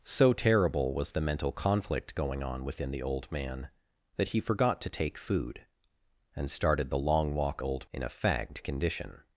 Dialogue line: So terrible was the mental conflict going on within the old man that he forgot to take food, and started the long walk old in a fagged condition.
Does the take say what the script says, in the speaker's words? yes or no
yes